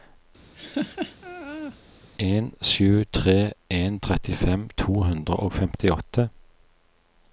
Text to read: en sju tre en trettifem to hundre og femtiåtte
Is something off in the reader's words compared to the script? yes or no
no